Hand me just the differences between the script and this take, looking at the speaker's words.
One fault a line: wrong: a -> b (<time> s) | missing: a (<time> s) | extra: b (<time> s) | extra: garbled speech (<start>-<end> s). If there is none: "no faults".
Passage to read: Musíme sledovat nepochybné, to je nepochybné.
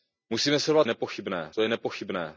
no faults